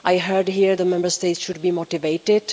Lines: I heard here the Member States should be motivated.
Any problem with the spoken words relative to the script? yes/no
no